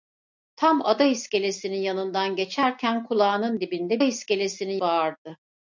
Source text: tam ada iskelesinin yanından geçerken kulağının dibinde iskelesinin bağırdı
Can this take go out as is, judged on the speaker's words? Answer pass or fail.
pass